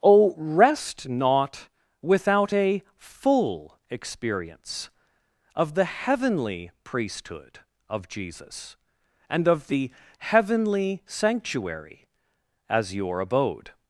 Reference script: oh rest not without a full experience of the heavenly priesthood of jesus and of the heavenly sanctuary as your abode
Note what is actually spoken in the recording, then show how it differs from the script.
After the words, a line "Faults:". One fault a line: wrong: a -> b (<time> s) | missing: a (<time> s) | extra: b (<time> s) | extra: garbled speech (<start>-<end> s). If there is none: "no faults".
oh rest not without a full experience of the heavenly priesthood of jesus and of the heavenly sanctuary as your abode
Faults:
no faults